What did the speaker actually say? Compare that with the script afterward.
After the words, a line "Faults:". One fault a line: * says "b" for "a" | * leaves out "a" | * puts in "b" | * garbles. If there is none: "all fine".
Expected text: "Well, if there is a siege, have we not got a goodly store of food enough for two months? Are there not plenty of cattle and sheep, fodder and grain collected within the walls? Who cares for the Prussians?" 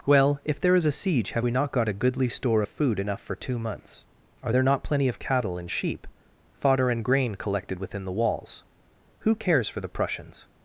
"Well, if there is a siege, have we not got a goodly store of food enough for two months? Are there not plenty of cattle and sheep, fodder and grain collected within the walls? Who cares for the Prussians?"
Faults:
all fine